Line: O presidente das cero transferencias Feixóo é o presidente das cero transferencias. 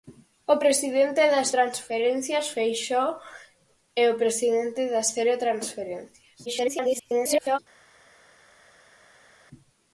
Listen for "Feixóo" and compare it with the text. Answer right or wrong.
right